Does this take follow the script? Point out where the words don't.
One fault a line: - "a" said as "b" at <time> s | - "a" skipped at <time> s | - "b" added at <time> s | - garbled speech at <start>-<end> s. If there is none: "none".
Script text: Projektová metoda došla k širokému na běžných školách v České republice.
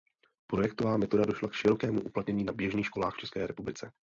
- "uplatnění" added at 2.0 s